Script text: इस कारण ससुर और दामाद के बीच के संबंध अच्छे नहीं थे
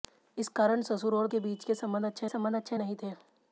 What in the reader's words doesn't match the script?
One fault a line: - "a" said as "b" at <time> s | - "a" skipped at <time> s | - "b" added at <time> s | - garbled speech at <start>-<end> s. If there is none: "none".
- "दामाद" skipped at 1.3 s
- "संबंध अच्छे" added at 2.3 s